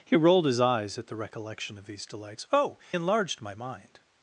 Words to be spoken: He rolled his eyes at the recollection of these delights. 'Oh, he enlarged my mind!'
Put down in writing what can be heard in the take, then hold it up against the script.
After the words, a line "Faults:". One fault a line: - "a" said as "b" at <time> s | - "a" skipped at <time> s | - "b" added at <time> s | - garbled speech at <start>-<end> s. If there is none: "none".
He rolled his eyes at the recollection of these delights. 'Oh, enlarged my mind!'
Faults:
- "he" skipped at 2.8 s